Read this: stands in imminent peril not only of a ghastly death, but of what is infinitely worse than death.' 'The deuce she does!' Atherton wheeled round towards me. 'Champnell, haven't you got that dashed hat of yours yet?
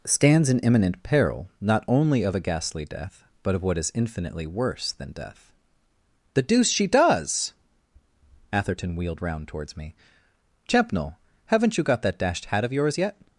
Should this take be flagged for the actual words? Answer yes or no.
no